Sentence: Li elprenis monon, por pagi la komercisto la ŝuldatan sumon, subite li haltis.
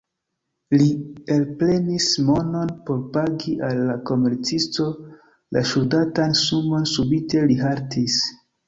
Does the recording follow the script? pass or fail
fail